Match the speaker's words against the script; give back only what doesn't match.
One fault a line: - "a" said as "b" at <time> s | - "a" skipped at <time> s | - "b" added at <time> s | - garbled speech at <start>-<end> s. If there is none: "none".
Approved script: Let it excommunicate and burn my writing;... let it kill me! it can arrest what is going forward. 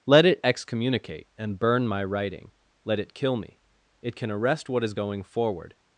none